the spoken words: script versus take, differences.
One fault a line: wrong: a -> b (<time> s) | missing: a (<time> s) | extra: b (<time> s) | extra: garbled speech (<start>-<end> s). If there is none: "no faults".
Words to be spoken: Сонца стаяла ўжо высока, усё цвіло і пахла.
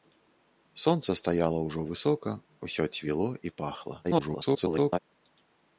extra: garbled speech (4.0-5.0 s)